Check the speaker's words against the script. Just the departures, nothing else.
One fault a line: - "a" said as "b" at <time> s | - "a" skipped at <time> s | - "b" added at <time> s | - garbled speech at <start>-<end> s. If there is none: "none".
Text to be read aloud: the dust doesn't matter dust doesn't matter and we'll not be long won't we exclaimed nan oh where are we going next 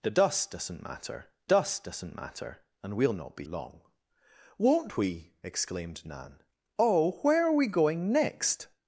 none